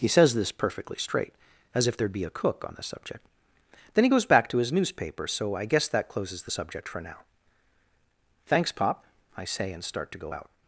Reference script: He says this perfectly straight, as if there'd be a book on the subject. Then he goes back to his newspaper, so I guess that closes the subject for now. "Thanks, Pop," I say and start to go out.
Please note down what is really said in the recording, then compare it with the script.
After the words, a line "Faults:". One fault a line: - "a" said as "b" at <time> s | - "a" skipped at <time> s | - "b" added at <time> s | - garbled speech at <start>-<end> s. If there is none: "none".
He says this perfectly straight, as if there'd be a cook on the subject. Then he goes back to his newspaper, so I guess that closes the subject for now. "Thanks, Pop," I say and start to go out.
Faults:
- "book" said as "cook" at 2.3 s